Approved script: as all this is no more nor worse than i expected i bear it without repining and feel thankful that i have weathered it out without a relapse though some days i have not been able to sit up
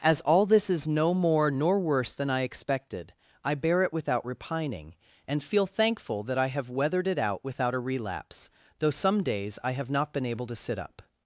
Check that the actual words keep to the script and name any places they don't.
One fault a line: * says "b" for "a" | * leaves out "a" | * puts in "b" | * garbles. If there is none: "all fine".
all fine